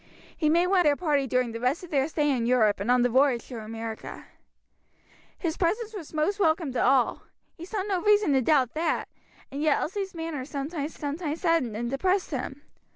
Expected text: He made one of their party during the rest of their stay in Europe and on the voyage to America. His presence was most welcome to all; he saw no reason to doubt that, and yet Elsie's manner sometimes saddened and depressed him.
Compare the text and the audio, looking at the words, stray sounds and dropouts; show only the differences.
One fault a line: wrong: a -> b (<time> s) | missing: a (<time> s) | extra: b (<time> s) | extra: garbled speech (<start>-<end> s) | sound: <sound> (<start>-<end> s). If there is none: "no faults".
missing: of (0.8 s)
extra: sometimes (10.9 s)